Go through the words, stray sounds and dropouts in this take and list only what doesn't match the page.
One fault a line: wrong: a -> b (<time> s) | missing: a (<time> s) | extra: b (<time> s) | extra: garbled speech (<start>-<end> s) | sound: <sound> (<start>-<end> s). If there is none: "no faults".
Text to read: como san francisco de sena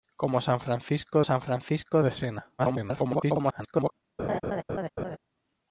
extra: san francisco (1.2 s)
extra: garbled speech (2.6-3.9 s)
sound: laugh (4.2-5.2 s)